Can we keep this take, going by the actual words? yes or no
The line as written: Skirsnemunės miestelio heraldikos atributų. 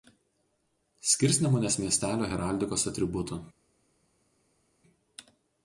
yes